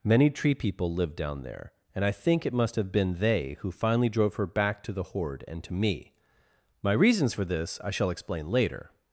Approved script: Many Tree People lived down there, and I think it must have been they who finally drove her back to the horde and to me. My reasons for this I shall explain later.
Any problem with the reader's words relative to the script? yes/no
no